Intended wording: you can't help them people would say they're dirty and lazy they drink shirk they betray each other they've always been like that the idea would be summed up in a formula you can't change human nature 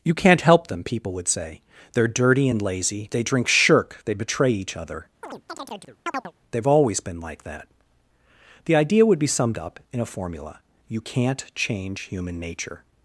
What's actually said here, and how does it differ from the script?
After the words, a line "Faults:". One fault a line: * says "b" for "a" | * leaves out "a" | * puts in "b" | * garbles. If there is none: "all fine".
you can't help them people would say they're dirty and lazy they drink shirk they betray each other they've always been like that the idea would be summed up in a formula you can't change human nature
Faults:
all fine